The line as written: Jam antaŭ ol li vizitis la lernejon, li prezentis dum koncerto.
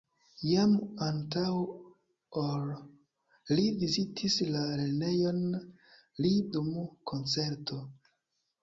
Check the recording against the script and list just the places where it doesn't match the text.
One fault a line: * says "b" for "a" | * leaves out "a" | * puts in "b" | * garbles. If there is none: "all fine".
* leaves out "prezentis"